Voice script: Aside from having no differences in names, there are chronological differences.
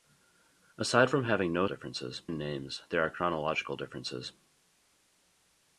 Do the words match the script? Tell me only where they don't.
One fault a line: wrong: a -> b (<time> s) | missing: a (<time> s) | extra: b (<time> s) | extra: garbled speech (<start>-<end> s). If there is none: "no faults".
no faults